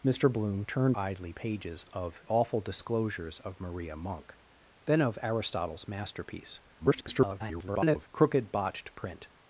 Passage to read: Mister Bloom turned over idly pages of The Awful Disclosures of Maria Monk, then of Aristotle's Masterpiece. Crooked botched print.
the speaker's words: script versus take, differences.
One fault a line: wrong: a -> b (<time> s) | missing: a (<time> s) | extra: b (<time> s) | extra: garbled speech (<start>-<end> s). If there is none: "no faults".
missing: over (1.0 s)
missing: The (2.2 s)
extra: garbled speech (6.8-8.1 s)